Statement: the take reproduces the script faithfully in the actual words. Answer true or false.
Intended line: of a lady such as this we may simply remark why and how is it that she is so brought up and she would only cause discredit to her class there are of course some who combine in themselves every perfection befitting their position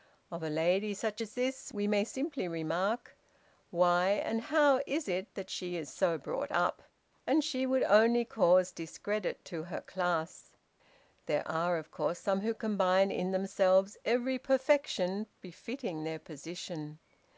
true